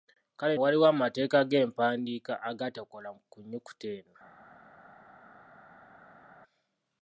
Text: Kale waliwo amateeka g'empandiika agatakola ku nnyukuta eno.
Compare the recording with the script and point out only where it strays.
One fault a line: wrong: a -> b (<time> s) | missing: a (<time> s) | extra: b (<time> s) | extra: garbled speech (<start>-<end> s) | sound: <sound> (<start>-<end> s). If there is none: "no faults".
no faults